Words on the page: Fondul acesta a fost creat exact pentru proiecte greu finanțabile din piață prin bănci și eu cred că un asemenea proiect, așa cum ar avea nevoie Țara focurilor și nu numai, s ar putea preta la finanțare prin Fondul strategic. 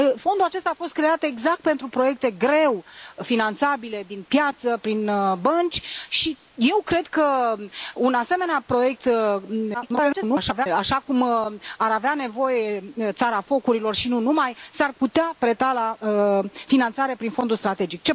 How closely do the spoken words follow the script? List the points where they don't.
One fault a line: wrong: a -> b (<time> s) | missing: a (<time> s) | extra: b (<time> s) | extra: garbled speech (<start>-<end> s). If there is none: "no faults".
extra: garbled speech (9.7-10.7 s)